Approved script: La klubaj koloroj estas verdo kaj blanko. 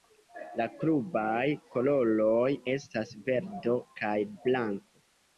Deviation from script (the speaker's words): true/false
false